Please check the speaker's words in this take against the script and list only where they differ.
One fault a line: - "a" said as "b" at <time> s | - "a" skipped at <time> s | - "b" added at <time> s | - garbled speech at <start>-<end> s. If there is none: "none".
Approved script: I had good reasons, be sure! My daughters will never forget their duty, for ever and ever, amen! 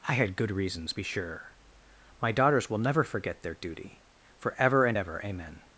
none